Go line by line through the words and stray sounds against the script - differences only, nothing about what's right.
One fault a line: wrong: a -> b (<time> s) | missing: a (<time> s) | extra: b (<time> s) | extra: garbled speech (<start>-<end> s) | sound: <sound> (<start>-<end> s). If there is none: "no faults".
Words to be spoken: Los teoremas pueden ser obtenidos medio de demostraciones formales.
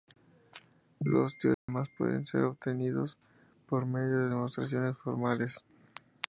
sound: dropout (1.5-1.7 s)
extra: por (3.7 s)